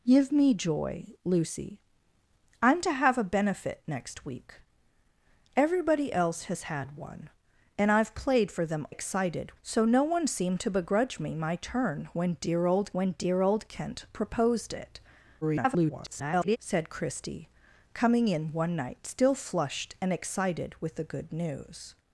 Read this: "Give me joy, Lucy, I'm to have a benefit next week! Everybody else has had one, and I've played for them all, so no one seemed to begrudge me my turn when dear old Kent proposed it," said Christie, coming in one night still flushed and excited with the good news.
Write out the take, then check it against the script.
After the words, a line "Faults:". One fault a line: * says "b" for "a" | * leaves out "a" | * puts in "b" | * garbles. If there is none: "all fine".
"Give me joy, Lucy, I'm to have a benefit next week! Everybody else has had one, and I've played for them excited, so no one seemed to begrudge me my turn when dear old when dear old Kent proposed it," [garbled] said Christie, coming in one night still flushed and excited with the good news.
Faults:
* says "excited" for "all"
* puts in "when dear old"
* garbles